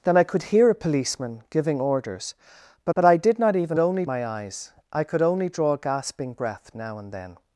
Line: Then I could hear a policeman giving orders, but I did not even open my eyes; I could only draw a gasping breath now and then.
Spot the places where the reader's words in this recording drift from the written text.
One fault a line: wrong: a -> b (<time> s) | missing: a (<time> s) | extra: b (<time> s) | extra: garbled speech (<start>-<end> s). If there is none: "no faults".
extra: but (2.9 s)
wrong: open -> only (3.8 s)